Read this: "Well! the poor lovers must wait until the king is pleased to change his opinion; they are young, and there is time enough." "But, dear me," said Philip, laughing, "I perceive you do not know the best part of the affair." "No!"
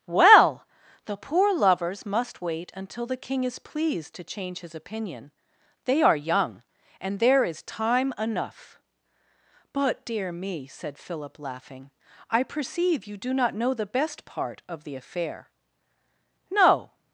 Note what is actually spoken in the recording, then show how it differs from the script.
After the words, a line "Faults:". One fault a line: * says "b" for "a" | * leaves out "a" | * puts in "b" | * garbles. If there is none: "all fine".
"Well! the poor lovers must wait until the king is pleased to change his opinion; they are young, and there is time enough." "But, dear me," said Philip, laughing, "I perceive you do not know the best part of the affair." "No!"
Faults:
all fine